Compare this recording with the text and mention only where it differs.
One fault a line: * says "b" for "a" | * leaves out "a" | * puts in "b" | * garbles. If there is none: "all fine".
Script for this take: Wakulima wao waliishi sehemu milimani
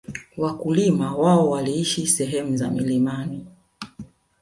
* puts in "za"